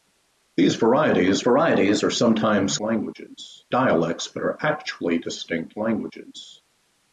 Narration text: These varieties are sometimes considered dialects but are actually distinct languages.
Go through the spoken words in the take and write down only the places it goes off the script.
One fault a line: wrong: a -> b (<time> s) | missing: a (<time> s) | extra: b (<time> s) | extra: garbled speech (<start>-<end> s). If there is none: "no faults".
extra: varieties (1.4 s)
wrong: considered -> languages (2.8 s)